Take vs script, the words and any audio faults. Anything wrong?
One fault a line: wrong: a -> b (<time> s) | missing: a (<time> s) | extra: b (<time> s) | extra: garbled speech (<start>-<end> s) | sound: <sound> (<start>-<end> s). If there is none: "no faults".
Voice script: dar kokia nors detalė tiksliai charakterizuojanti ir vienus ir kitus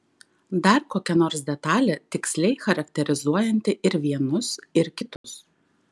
sound: dropout (5.2-5.2 s)